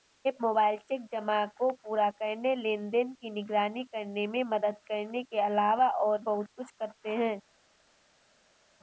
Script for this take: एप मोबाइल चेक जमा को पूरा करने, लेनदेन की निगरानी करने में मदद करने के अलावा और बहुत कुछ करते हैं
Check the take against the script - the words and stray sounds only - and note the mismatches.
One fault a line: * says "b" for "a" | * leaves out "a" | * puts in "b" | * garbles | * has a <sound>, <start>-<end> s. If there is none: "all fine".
all fine